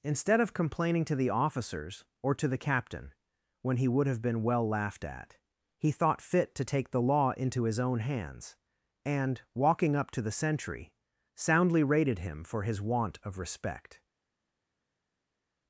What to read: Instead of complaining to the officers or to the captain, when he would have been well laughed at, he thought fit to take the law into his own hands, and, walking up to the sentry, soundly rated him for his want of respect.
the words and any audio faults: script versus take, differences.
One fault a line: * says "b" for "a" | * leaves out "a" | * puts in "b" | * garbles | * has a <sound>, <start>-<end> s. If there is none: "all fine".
all fine